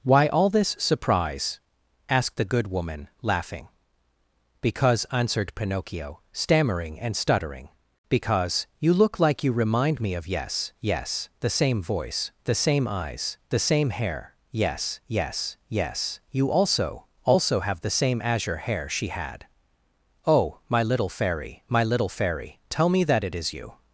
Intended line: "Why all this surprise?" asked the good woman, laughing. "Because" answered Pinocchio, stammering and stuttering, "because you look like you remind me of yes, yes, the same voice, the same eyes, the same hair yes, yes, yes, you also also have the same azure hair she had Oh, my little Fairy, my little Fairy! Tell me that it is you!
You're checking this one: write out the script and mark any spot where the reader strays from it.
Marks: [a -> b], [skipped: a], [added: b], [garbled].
"Why all this surprise?" asked the good woman, laughing. "Because" answered Pinocchio, stammering and stuttering, "because you look like you remind me of yes, yes, the same voice, the same eyes, the same hair yes, yes, yes, you also also have the same azure hair she had Oh, my little Fairy, my little Fairy! Tell me that it is you!